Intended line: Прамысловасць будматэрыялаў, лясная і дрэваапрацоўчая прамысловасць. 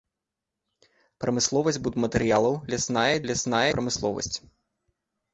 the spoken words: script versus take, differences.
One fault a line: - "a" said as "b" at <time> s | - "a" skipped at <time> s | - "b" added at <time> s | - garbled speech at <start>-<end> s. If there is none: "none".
- "дрэваапрацоўчая" said as "лясная" at 3.3 s